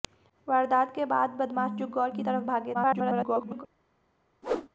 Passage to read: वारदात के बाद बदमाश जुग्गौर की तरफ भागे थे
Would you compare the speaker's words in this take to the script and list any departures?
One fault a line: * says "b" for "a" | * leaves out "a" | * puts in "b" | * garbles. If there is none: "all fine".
* garbles